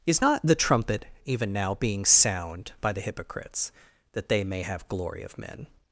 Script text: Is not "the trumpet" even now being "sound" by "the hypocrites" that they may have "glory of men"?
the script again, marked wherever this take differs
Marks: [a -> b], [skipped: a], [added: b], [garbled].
Is not "the trumpet" even now being "sound" by "the hypocrites" that they may have "glory of men"?